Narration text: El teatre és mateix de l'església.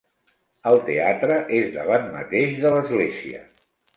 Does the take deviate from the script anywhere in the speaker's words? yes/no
yes